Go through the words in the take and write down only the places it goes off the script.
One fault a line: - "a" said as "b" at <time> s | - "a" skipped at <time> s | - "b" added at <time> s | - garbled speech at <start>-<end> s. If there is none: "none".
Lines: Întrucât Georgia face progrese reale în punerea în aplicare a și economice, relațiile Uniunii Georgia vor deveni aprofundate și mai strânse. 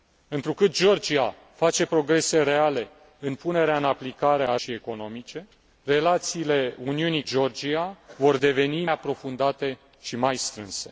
none